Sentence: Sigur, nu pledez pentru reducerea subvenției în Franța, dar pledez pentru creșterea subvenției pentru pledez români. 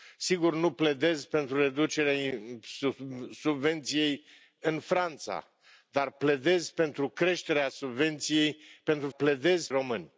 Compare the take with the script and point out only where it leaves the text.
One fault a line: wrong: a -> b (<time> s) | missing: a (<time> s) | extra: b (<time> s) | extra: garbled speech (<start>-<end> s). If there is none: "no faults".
no faults